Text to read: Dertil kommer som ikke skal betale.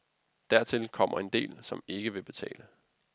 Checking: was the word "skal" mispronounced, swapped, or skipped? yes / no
yes